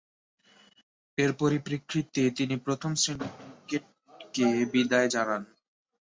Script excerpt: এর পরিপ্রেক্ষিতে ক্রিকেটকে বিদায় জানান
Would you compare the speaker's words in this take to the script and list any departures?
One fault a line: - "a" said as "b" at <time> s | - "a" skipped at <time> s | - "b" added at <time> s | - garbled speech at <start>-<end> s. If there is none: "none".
- "তিনি প্রথম শ্রেণীর" added at 2.4 s